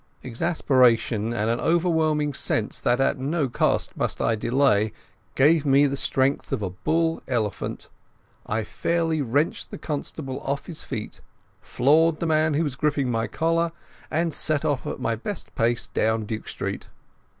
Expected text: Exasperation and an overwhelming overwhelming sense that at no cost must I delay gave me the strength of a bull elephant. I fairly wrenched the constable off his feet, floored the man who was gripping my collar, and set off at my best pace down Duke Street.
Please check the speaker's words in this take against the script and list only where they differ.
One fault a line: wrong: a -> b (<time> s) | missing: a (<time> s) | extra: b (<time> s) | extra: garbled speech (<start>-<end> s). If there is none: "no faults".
missing: overwhelming (2.3 s)